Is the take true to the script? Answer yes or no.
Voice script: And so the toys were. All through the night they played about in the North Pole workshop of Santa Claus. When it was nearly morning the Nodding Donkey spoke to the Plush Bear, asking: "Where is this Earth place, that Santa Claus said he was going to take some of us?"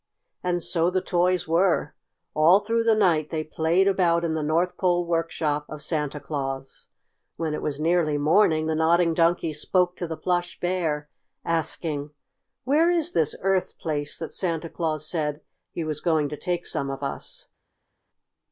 yes